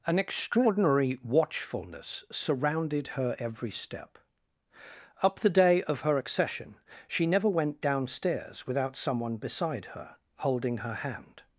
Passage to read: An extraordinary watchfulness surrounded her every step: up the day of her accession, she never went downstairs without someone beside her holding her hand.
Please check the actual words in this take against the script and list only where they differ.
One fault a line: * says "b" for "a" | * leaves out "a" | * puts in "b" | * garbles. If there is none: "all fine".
all fine